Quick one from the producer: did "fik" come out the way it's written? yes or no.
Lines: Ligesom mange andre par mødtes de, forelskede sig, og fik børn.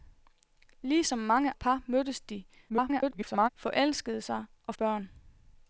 no